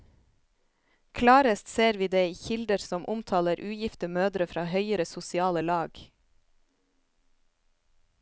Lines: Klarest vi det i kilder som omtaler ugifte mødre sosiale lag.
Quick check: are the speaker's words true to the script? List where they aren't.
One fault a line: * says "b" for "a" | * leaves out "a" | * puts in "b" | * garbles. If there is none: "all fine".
* puts in "ser"
* puts in "fra høyere"